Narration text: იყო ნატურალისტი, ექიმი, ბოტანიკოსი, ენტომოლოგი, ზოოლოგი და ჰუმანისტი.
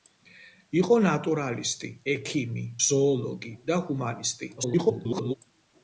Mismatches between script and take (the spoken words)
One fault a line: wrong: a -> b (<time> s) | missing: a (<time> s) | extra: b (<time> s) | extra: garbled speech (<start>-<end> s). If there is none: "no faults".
missing: ბოტანიკოსი ენტომოლოგი (2.6 s)
extra: garbled speech (4.6-5.3 s)